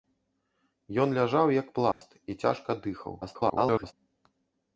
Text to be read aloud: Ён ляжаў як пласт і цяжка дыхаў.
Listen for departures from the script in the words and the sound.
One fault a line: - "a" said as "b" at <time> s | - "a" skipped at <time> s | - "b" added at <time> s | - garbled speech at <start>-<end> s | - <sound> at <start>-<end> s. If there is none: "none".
- dropout at 1.9-2.0 s
- garbled speech at 3.2-3.9 s